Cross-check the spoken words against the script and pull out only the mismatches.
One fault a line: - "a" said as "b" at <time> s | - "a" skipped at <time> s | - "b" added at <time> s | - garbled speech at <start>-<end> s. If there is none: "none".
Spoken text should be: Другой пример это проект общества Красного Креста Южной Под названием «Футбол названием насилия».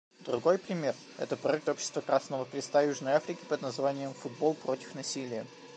- "Африки" added at 3.1 s
- "названием" said as "против" at 4.5 s